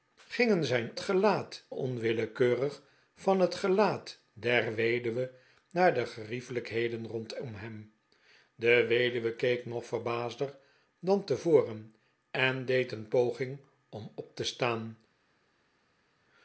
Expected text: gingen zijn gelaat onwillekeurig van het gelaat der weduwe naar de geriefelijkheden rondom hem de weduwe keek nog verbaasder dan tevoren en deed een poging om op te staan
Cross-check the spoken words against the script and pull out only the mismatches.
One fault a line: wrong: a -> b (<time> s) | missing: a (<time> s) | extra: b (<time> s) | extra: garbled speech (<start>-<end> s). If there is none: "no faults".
no faults